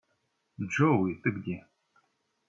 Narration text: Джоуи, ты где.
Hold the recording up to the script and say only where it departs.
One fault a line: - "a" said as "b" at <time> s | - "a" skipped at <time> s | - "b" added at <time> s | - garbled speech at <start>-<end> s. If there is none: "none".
none